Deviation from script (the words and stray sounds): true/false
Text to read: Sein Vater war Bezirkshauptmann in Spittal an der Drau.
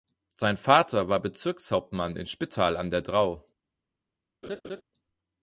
true